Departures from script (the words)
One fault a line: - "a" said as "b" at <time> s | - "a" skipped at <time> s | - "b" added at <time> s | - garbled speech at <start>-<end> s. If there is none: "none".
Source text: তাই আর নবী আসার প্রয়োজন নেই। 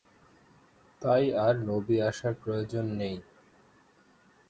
none